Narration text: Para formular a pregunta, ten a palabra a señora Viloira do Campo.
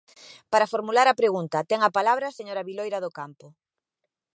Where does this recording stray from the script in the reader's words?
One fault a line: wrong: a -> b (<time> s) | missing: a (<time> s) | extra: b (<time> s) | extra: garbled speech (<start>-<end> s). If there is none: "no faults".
no faults